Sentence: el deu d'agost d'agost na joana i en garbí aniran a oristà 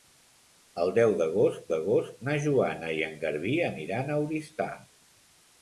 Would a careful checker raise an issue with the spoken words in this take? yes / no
no